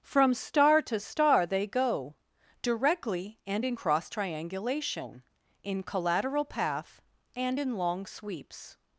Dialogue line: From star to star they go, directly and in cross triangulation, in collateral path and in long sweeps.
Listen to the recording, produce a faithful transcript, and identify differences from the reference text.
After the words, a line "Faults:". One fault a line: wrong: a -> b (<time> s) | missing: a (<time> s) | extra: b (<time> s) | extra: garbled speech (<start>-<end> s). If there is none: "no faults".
From star to star they go, directly and in cross triangulation, in collateral path and in long sweeps.
Faults:
no faults